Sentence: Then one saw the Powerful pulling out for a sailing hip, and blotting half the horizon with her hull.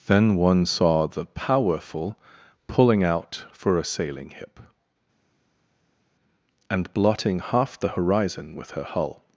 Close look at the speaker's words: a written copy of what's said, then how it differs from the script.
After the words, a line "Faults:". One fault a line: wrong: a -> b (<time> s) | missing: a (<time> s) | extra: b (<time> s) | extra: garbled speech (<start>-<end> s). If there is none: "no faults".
Then one saw the Powerful pulling out for a sailing hip, and blotting half the horizon with her hull.
Faults:
no faults